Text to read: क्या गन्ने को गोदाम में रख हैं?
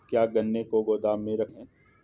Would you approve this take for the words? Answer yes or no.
yes